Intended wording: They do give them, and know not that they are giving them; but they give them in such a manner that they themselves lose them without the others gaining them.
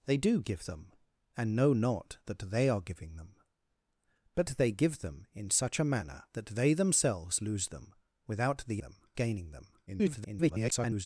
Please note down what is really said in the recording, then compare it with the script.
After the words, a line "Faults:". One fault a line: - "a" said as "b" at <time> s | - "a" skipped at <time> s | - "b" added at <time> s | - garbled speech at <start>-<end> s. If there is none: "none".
They do give them, and know not that they are giving them; but they give them in such a manner that they themselves lose them without the them gaining them. [garbled]
Faults:
- "others" said as "them" at 8.8 s
- garbled speech at 9.9-11.1 s